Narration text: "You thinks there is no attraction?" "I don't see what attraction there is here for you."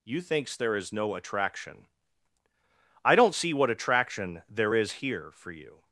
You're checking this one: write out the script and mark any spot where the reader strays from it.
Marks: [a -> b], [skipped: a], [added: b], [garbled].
"You thinks there is no attraction?" "I don't see what attraction there is here for you."